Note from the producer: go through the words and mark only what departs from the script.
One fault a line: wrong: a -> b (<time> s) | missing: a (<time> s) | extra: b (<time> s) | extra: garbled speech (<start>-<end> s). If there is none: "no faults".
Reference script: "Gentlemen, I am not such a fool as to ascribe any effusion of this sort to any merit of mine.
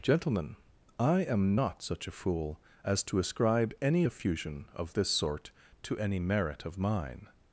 no faults